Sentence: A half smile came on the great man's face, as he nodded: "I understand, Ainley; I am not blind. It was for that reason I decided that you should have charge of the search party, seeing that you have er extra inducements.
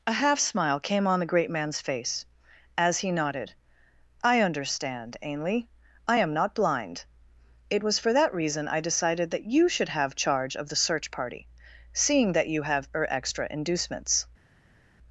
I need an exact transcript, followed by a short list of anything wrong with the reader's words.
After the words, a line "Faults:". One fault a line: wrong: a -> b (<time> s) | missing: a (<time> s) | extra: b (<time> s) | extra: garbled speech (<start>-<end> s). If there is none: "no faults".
A half smile came on the great man's face, as he nodded: "I understand, Ainley; I am not blind. It was for that reason I decided that you should have charge of the search party, seeing that you have er extra inducements.
Faults:
no faults